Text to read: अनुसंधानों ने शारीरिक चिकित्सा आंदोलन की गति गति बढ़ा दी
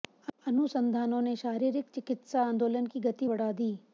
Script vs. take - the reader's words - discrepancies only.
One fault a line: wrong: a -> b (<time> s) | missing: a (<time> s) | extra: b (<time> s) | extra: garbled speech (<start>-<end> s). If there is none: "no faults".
missing: गति (3.3 s)